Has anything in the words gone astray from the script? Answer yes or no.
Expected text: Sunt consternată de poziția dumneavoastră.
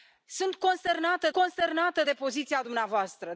yes